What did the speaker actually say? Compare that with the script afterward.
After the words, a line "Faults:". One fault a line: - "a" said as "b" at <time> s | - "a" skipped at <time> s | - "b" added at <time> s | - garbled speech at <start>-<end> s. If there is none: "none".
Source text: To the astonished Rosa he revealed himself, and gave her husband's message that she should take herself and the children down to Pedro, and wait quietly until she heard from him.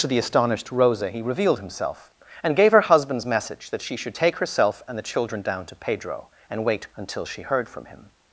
To the astonished Rosa he revealed himself, and gave her husband's message that she should take herself and the children down to Pedro, and wait until she heard from him.
Faults:
- "quietly" skipped at 6.9 s